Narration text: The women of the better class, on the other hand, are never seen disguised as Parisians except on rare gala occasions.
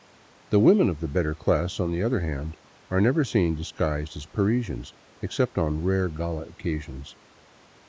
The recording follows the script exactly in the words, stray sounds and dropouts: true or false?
true